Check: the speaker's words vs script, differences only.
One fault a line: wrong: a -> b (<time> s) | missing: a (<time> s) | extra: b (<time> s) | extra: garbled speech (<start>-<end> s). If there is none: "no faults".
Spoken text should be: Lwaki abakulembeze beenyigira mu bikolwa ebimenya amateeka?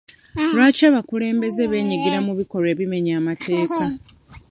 no faults